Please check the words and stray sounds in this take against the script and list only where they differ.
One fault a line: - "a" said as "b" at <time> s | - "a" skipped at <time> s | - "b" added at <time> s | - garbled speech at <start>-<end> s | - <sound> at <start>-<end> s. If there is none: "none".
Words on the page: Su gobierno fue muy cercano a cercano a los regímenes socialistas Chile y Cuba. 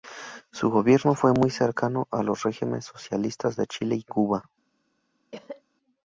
- "cercano a" skipped at 2.2 s
- "de" added at 3.6 s
- cough at 5.3-5.6 s